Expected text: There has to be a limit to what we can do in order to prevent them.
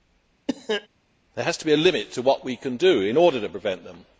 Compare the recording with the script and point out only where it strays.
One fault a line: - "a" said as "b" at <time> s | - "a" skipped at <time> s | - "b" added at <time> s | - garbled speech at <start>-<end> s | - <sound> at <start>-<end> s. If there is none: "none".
- cough at 0.5-0.9 s